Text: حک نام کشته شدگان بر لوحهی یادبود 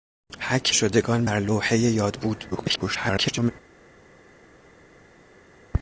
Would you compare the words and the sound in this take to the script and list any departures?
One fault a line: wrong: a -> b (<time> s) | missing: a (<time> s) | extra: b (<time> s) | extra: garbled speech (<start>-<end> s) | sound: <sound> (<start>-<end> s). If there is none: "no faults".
missing: نام کشته (0.8 s)
extra: garbled speech (2.5-3.5 s)